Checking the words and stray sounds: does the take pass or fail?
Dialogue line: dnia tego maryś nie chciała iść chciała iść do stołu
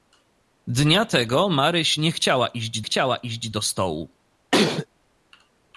fail